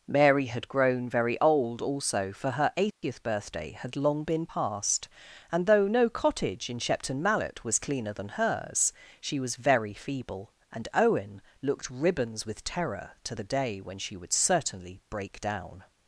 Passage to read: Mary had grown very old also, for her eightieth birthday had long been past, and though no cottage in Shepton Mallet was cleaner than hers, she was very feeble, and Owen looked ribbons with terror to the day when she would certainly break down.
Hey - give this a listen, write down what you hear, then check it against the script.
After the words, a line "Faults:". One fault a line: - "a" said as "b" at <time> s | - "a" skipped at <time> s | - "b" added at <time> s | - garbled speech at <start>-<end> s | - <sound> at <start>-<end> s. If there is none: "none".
Mary had grown very old also, for her eightieth birthday had long been past, and though no cottage in Shepton Mallet was cleaner than hers, she was very feeble, and Owen looked ribbons with terror to the day when she would certainly break down.
Faults:
- dropout at 2.9-3.0 s